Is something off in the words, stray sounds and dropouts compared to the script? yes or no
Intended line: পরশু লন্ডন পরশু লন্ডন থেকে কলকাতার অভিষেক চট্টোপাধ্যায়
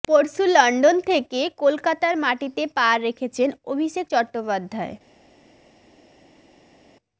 yes